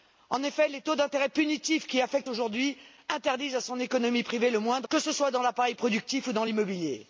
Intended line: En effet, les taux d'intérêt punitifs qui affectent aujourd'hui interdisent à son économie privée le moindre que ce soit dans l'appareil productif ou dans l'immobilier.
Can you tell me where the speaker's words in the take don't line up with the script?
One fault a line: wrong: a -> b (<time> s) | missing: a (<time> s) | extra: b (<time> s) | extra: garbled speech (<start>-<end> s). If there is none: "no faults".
no faults